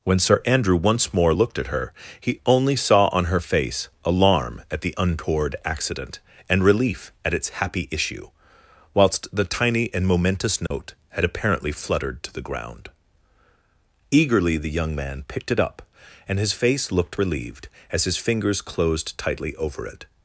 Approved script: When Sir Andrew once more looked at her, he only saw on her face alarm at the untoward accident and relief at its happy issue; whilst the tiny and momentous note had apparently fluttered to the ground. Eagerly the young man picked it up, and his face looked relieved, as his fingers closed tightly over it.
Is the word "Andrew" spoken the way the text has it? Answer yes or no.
yes